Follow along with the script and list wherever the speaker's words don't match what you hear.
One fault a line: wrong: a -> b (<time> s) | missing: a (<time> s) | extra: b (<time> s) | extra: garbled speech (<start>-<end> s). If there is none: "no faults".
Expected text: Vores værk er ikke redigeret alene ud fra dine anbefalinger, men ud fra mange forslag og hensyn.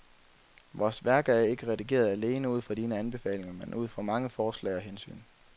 no faults